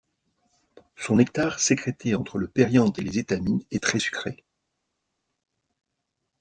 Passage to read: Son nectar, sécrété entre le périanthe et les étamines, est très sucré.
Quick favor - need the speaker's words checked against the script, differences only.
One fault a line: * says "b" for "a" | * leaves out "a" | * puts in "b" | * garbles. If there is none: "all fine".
all fine